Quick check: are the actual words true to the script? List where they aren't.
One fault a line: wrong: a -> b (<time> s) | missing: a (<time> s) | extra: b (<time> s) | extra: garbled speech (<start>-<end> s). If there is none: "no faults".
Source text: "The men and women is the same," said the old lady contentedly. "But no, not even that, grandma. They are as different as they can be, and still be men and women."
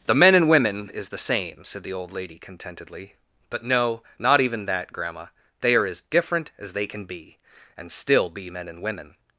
no faults